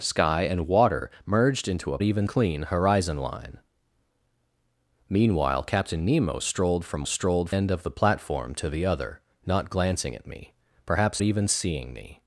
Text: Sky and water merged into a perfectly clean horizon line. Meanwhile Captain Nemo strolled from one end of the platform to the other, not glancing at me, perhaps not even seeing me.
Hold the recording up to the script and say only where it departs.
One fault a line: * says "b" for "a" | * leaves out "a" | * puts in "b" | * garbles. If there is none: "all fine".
* says "even" for "perfectly"
* says "strolled" for "one"
* leaves out "not"